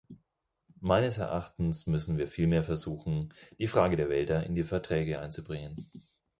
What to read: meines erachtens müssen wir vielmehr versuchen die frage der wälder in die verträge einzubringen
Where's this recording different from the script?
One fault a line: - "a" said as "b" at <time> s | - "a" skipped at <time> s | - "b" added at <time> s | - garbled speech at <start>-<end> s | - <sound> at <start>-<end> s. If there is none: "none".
none